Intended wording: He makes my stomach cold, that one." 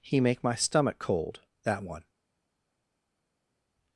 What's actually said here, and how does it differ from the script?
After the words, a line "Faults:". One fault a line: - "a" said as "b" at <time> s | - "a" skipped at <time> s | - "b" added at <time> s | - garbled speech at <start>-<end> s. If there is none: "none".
He make my stomach cold, that one."
Faults:
- "makes" said as "make" at 0.2 s